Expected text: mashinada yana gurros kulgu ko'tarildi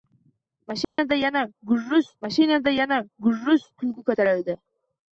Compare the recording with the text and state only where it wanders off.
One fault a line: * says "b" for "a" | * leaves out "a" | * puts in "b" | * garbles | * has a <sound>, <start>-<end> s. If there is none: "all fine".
* has a dropout, 0.8-1.0 s
* puts in "mashinada yana gurros"